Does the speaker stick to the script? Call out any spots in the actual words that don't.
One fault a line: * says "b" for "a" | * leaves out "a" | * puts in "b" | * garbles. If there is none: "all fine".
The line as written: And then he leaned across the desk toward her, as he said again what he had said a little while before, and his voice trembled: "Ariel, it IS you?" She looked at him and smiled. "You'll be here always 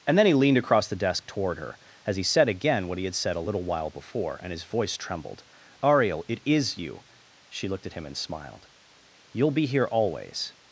all fine